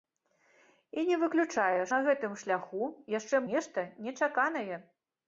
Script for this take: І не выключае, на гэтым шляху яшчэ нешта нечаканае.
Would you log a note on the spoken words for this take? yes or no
no